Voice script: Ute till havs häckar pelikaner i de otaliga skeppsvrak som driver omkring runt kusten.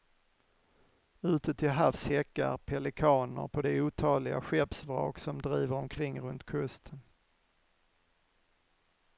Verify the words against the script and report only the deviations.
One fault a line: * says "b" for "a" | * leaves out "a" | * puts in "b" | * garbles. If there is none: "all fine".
* says "på" for "i"